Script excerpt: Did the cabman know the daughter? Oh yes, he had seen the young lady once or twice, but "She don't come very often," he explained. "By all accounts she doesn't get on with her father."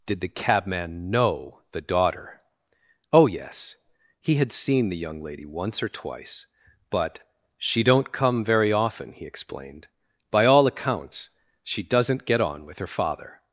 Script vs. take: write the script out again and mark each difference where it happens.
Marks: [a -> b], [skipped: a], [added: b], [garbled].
Did the cabman know the daughter? Oh yes, he had seen the young lady once or twice, but "She don't come very often," he explained. "By all accounts she doesn't get on with her father."